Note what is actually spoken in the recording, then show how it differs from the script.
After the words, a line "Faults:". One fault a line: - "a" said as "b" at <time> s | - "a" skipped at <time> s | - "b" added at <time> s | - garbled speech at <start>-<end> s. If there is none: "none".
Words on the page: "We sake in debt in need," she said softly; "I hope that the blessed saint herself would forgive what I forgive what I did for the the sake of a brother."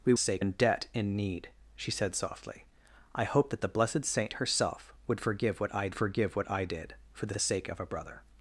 "We sake in debt in need," she said softly; "I hope that the blessed saint herself would forgive what I forgive what I did for the the sake of a brother."
Faults:
none